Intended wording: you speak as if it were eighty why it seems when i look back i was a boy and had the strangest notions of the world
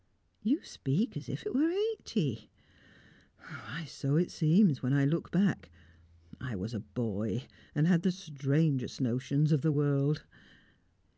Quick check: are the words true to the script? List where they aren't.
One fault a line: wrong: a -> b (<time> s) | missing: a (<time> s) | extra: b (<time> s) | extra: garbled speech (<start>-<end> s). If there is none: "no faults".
extra: so (3.9 s)